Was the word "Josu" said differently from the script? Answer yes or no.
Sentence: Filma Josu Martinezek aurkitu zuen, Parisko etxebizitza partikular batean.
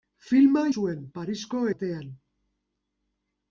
yes